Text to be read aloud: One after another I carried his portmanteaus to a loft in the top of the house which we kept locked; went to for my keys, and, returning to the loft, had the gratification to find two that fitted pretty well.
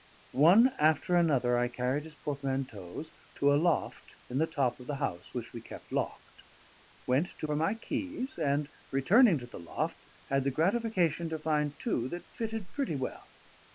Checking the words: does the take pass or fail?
pass